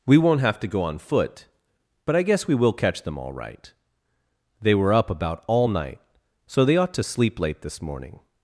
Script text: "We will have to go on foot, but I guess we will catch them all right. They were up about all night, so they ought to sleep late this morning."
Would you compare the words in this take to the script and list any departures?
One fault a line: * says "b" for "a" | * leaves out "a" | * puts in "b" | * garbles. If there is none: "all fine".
* says "won't" for "will"